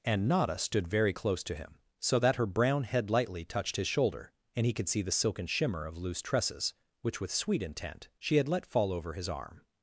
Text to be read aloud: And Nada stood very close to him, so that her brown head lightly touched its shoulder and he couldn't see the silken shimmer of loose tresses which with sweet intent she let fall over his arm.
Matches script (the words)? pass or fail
fail